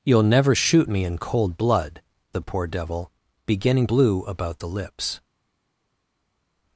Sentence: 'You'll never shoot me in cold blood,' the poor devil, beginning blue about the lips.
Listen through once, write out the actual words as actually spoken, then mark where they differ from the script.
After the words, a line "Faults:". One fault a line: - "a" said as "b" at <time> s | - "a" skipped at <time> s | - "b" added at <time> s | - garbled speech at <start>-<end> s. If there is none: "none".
'You'll never shoot me in cold blood,' the poor devil, beginning blue about the lips.
Faults:
none